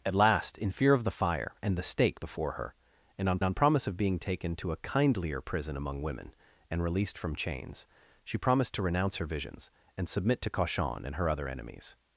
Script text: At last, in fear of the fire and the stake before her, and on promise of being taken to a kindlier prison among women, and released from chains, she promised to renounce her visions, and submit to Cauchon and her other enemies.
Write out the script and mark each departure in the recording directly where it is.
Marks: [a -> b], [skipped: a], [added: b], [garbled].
At last, in fear of the fire and the stake before her, and on [added: on] promise of being taken to a kindlier prison among women, and released from chains, she promised to renounce her visions, and submit to Cauchon and her other enemies.